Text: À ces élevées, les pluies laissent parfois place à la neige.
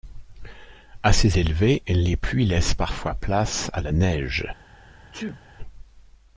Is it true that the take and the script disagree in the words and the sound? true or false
true